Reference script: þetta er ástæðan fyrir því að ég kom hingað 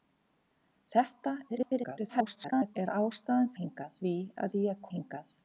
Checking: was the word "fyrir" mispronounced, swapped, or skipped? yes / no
yes